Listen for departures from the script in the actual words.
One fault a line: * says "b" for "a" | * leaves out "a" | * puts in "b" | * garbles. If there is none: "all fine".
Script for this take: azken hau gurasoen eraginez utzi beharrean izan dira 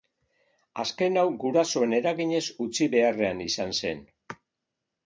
* says "zen" for "dira"